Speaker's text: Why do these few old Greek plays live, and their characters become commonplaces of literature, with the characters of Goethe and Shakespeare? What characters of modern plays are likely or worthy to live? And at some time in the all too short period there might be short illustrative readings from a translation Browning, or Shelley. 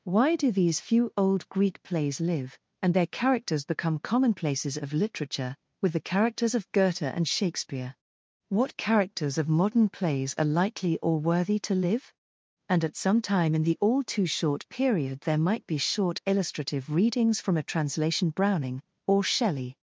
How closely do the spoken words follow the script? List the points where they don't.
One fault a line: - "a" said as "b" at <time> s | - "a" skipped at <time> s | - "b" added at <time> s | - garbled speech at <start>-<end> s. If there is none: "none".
none